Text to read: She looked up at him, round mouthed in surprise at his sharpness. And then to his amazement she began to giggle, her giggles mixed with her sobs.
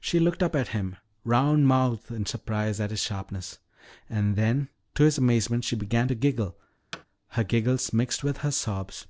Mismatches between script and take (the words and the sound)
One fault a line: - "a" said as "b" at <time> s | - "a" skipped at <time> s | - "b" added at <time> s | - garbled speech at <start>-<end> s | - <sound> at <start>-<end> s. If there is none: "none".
- thud at 6.9-7.1 s